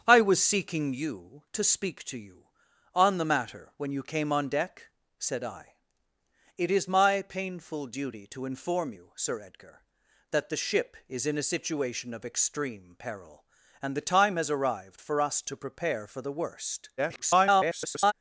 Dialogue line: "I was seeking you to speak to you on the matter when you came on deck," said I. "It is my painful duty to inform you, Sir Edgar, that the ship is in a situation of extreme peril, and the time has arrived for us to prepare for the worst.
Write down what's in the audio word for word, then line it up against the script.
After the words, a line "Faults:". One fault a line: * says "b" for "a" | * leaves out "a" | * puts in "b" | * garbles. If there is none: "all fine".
"I was seeking you to speak to you on the matter when you came on deck," said I. "It is my painful duty to inform you, Sir Edgar, that the ship is in a situation of extreme peril, and the time has arrived for us to prepare for the worst. [garbled]
Faults:
* garbles